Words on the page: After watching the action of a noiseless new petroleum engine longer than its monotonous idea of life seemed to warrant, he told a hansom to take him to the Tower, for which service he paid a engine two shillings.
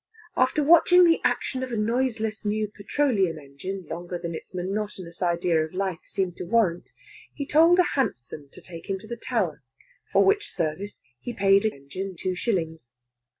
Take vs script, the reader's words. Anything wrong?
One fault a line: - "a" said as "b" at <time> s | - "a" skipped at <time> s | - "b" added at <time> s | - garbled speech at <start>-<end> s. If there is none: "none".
none